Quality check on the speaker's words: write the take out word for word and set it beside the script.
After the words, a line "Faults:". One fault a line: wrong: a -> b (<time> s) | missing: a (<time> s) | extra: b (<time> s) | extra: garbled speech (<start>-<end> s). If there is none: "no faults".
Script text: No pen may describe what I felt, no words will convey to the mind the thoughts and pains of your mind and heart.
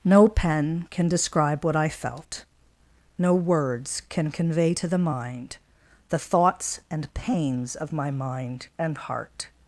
No pen can describe what I felt, no words can convey to the mind the thoughts and pains of my mind and heart.
Faults:
wrong: may -> can (0.9 s)
wrong: will -> can (4.1 s)
wrong: your -> my (7.9 s)